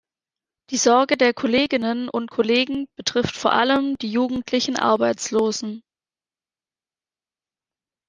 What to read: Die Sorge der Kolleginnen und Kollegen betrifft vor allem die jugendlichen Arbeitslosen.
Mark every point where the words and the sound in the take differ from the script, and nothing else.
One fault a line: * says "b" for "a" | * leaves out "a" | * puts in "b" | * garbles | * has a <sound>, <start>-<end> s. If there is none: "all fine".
all fine